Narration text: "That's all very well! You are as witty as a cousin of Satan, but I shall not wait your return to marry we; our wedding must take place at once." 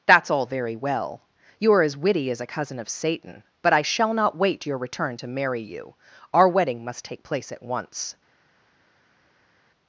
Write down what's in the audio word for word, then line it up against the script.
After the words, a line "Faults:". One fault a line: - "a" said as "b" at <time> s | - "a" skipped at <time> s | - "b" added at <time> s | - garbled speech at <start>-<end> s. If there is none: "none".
"That's all very well! You are as witty as a cousin of Satan, but I shall not wait your return to marry you; our wedding must take place at once."
Faults:
- "we" said as "you" at 5.6 s